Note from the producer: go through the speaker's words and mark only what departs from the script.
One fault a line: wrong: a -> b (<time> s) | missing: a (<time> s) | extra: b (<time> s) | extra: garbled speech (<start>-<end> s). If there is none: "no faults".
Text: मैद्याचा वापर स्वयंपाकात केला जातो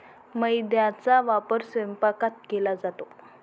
no faults